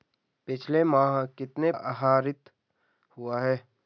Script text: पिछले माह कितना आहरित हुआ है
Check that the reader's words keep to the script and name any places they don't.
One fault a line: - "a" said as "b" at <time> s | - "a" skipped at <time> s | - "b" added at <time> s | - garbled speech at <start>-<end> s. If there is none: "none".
none